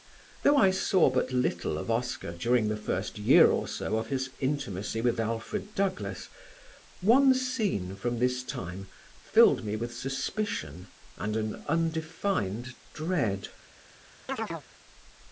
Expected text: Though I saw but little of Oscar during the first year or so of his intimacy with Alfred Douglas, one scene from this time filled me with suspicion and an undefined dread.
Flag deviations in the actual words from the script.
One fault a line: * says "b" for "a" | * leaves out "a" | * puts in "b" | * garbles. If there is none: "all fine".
all fine